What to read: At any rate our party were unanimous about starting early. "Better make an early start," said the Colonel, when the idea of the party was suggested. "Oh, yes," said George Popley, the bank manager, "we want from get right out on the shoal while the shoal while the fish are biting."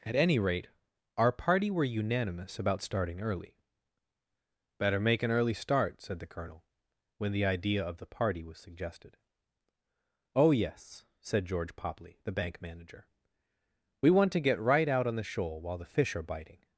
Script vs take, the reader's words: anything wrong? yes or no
yes